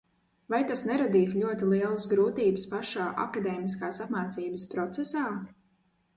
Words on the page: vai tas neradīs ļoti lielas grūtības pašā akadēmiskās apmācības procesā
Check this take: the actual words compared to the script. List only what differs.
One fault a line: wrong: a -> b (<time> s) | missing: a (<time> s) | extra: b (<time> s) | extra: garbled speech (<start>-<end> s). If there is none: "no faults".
no faults